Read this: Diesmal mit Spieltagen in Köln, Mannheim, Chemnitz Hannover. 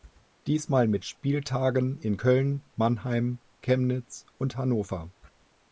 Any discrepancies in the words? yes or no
yes